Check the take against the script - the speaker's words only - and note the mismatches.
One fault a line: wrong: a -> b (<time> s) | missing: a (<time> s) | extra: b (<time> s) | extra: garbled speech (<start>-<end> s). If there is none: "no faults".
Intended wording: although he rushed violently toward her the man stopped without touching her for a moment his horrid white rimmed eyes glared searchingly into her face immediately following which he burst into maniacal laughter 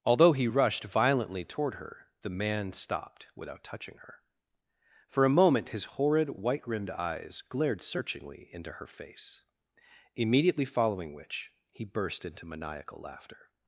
no faults